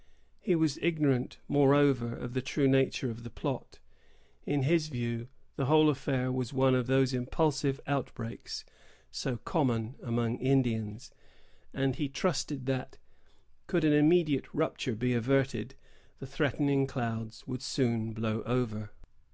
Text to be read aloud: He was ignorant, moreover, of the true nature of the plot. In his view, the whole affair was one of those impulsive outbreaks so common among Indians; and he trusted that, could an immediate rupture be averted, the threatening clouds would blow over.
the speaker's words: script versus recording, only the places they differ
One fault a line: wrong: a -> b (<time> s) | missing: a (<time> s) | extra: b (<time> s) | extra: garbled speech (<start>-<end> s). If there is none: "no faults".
extra: soon (17.6 s)